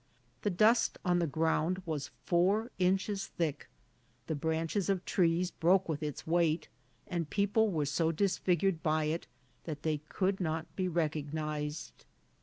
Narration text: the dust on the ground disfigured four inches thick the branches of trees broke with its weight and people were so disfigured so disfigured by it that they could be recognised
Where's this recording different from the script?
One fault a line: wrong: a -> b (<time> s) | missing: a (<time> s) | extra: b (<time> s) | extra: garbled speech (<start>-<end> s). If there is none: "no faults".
wrong: disfigured -> was (1.9 s)
missing: so disfigured (8.8 s)
extra: not (10.4 s)